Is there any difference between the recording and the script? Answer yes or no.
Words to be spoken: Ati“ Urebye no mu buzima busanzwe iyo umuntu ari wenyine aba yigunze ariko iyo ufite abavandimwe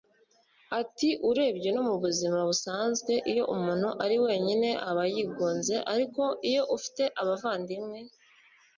no